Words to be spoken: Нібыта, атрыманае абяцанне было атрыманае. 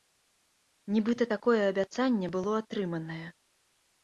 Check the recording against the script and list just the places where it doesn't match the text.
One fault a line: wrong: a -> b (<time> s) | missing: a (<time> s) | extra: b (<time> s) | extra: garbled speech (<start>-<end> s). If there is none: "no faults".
wrong: атрыманае -> такое (1.3 s)